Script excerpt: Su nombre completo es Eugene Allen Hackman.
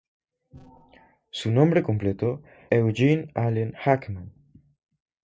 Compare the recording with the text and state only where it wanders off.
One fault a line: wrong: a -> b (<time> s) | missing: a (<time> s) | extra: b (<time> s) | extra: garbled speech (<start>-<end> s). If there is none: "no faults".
missing: es (2.4 s)